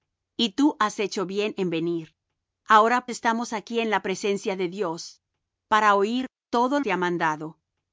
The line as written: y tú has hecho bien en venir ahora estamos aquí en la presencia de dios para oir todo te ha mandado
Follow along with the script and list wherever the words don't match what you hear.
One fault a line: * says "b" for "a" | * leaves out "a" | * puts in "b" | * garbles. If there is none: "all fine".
all fine